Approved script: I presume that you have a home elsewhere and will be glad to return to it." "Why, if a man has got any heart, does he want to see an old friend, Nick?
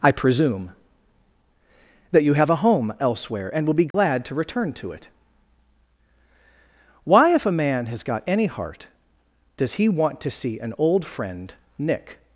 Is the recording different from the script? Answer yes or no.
no